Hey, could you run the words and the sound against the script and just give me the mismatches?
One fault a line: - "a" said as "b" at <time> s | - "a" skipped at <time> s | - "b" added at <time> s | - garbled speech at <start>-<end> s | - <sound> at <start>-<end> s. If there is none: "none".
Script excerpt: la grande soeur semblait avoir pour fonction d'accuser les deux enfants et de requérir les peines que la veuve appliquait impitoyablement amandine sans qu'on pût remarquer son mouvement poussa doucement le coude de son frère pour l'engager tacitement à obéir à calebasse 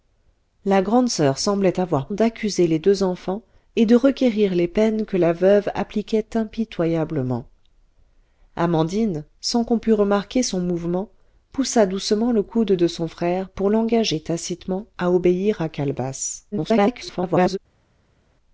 - "pour fonction" skipped at 2.1 s
- garbled speech at 16.5-17.6 s